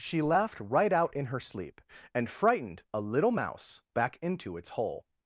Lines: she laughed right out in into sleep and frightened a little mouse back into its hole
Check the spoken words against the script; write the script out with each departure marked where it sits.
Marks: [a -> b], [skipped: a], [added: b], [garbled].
she laughed right out in [into -> her] sleep and frightened a little mouse back into its hole